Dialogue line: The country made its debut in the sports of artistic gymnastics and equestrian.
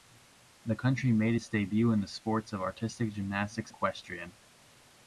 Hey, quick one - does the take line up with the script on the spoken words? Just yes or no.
no